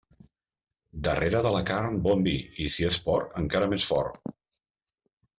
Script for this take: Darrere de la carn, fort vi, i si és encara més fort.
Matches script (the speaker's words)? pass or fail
fail